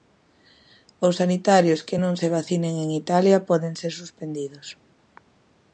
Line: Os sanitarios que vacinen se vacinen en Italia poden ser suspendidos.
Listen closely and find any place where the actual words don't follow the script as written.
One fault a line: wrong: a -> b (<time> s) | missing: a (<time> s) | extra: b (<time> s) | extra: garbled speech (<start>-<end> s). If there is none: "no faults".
wrong: vacinen -> non (2.0 s)